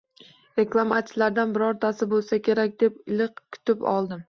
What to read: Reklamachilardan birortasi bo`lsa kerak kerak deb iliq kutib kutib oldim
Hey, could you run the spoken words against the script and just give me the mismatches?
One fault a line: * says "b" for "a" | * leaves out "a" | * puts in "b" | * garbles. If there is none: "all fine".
* leaves out "kerak"
* leaves out "kutib"